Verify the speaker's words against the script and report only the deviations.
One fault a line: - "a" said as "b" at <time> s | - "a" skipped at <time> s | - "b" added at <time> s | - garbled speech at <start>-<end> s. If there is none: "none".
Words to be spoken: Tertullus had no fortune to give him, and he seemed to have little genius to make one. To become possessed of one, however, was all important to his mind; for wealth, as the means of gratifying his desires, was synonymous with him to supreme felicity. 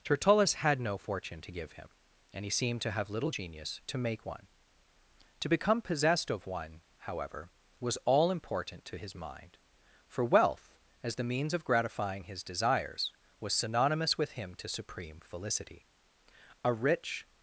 - "A rich" added at 16.6 s